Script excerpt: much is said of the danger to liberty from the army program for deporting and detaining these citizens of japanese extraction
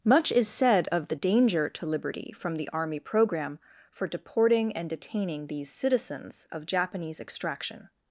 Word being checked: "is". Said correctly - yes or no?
yes